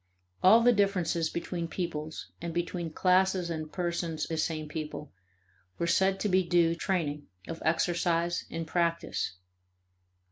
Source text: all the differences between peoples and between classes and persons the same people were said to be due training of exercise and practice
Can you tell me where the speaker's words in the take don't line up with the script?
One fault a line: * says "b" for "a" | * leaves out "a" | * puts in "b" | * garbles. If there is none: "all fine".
all fine